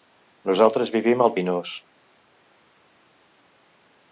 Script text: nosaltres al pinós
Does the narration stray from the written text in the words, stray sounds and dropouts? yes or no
yes